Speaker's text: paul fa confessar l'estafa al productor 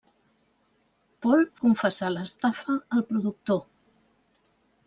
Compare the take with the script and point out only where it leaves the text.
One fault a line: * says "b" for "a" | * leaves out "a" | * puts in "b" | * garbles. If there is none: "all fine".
* leaves out "fa"